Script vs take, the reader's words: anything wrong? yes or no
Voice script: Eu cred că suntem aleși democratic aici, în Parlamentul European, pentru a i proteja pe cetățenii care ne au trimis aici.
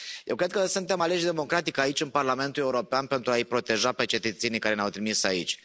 no